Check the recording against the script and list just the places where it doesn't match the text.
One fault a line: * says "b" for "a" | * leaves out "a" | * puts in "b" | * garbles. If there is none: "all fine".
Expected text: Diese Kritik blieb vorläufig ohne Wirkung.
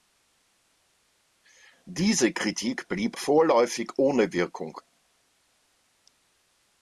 all fine